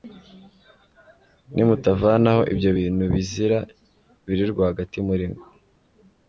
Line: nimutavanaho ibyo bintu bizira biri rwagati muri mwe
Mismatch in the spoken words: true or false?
false